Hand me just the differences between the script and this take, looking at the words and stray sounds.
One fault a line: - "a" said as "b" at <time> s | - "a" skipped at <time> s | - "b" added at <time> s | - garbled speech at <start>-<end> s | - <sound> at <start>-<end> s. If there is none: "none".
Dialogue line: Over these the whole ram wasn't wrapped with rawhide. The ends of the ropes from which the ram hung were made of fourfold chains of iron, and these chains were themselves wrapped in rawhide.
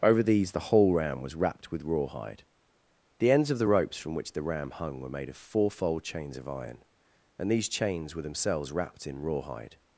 - "wasn't" said as "was" at 1.2 s